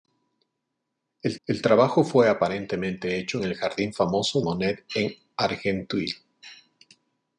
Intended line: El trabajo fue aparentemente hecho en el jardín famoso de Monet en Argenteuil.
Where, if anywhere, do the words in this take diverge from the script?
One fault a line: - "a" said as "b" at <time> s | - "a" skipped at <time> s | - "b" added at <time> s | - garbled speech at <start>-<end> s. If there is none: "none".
- "el" added at 1.5 s
- "de" skipped at 4.4 s